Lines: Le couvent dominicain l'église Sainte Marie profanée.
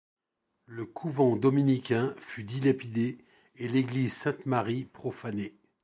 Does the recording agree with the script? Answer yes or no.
no